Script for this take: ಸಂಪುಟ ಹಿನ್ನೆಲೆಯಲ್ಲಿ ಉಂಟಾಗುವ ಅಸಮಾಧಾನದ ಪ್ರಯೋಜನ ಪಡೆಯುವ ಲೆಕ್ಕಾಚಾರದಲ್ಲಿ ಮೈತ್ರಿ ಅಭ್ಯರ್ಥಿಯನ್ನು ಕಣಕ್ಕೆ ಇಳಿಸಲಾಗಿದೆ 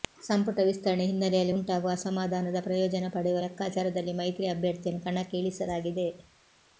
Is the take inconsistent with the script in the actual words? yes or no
yes